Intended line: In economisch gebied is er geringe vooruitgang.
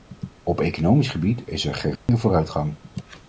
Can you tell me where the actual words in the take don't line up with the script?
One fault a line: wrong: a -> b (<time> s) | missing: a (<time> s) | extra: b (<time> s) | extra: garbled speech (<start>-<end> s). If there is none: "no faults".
wrong: In -> Op (0.4 s)